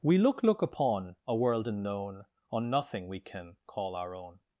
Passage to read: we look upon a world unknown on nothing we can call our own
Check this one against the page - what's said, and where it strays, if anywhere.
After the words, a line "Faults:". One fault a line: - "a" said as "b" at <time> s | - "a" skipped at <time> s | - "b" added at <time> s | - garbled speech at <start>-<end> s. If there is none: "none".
we look look upon a world unknown on nothing we can call our own
Faults:
- "look" added at 0.4 s